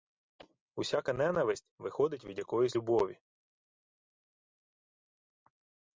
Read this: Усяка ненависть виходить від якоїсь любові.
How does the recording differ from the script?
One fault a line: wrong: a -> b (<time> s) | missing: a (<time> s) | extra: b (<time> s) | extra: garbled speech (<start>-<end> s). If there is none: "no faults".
no faults